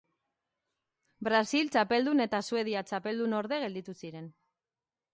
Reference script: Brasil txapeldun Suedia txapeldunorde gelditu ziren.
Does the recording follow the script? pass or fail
fail